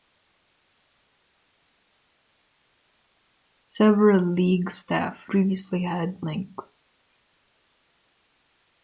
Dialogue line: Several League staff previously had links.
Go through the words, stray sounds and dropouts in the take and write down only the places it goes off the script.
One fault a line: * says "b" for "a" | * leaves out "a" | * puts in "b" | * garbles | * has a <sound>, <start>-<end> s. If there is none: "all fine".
all fine